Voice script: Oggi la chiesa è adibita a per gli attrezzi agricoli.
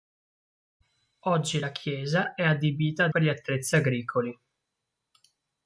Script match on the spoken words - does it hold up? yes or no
yes